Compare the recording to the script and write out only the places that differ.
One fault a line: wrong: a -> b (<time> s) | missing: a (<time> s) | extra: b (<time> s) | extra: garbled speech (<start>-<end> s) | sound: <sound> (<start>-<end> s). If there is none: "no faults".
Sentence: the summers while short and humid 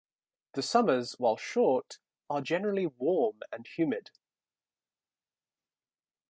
extra: are generally warm (2.3 s)